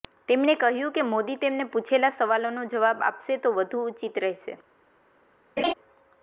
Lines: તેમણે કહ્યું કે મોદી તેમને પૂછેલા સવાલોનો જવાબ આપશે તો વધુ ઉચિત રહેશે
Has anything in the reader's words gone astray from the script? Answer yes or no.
no